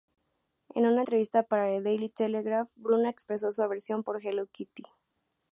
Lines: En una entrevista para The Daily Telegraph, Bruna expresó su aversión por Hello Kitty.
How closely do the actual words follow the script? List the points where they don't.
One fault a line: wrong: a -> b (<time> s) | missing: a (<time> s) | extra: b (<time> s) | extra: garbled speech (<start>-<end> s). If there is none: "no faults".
no faults